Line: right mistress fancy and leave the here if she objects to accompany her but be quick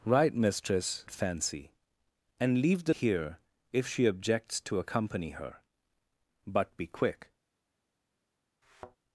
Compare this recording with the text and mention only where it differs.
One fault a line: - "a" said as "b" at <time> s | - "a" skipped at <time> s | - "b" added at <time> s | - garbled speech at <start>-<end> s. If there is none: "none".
none